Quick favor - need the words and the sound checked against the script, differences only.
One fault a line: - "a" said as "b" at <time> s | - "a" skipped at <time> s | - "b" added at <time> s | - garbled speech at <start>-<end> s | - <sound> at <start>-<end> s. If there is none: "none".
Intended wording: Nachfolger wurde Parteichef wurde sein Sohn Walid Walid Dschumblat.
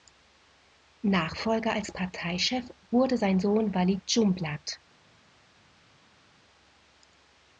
- "wurde" said as "als" at 1.7 s
- "Walid" skipped at 4.0 s